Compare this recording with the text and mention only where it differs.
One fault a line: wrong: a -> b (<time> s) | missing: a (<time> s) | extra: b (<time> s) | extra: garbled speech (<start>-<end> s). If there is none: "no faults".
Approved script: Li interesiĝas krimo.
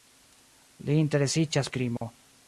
no faults